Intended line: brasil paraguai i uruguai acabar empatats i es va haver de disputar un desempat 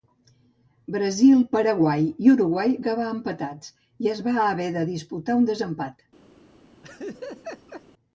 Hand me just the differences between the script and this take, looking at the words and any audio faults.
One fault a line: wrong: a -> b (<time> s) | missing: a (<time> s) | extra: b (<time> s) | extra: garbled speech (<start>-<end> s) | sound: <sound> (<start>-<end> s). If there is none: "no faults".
sound: laugh (6.8-7.8 s)